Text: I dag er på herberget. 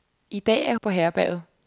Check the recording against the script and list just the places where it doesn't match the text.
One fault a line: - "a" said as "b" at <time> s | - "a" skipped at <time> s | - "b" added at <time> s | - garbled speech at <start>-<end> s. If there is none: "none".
none